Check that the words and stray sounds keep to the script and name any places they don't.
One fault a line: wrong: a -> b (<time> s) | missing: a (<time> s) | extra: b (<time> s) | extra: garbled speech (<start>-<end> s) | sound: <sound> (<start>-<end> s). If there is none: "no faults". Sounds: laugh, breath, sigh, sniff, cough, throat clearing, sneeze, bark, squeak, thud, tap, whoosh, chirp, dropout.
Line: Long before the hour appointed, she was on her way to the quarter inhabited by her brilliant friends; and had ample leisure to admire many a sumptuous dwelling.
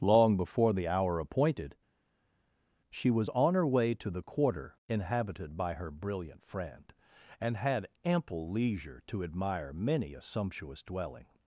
wrong: friends -> friend (6.4 s)